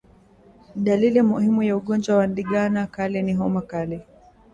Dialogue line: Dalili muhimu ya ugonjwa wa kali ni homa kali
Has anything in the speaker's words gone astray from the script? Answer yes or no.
yes